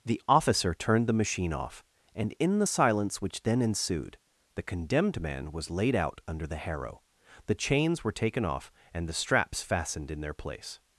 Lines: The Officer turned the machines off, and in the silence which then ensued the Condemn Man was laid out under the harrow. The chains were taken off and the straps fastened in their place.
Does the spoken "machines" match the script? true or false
false